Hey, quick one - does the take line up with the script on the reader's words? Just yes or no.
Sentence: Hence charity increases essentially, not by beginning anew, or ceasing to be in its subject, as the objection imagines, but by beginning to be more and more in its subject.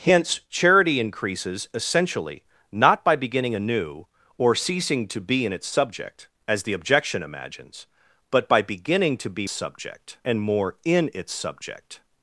no